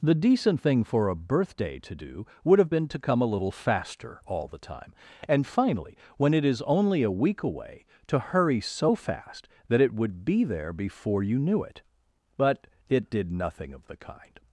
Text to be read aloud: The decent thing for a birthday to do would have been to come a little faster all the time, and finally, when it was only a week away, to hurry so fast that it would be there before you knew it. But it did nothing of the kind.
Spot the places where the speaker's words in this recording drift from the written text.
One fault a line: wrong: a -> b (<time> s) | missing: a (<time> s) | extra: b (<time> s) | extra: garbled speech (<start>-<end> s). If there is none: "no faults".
wrong: was -> is (6.4 s)